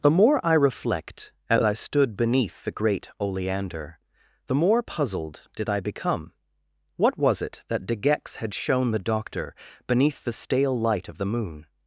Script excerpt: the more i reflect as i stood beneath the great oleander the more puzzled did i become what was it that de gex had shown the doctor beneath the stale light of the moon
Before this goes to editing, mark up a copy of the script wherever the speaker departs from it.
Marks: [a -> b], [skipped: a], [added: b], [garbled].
the more i reflect as i stood beneath the great oleander the more puzzled did i become what was it that de gex had shown the doctor beneath the stale light of the moon